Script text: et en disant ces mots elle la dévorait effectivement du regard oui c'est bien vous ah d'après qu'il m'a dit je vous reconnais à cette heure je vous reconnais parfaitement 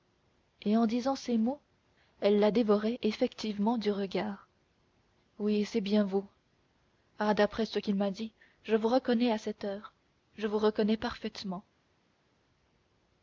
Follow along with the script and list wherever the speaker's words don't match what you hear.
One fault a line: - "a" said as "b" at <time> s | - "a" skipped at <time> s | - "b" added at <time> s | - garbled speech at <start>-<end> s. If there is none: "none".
- "ce" added at 7.7 s